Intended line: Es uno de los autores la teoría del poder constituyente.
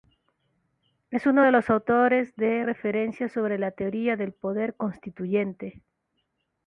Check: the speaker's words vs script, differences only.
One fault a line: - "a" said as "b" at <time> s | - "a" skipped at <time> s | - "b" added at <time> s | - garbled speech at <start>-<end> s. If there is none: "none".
- "de referencia sobre" added at 2.4 s